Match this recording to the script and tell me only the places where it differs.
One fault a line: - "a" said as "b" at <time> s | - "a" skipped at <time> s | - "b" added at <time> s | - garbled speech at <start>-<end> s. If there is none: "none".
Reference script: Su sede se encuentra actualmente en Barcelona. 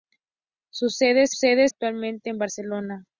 - "encuentra" said as "sede" at 1.3 s